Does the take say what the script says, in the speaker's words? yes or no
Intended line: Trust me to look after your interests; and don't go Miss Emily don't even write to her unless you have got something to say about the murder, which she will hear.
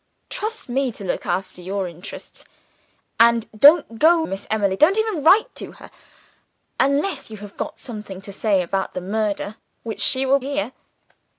yes